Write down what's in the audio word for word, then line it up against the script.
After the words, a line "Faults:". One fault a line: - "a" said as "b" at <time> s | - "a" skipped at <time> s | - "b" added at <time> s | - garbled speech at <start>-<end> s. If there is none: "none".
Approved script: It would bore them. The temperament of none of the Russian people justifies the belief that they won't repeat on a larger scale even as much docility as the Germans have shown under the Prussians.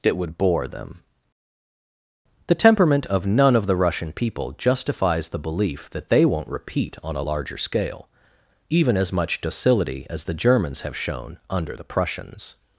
It would bore them. The temperament of none of the Russian people justifies the belief that they won't repeat on a larger scale even as much docility as the Germans have shown under the Prussians.
Faults:
none